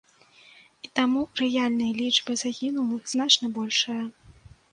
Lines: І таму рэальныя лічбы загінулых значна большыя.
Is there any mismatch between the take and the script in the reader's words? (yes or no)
no